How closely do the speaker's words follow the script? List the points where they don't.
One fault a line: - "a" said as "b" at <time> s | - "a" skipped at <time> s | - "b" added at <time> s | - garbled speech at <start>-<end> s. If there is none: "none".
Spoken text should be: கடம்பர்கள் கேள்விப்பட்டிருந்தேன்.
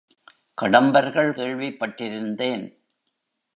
none